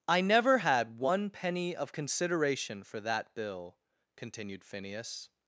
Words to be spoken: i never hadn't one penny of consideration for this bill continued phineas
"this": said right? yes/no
no